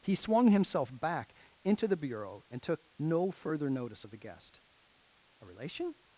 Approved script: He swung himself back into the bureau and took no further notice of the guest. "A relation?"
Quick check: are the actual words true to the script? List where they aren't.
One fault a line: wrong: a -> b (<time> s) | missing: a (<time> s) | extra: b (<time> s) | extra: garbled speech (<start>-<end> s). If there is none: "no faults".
no faults